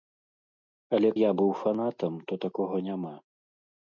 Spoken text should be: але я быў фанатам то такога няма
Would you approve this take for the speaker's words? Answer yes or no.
yes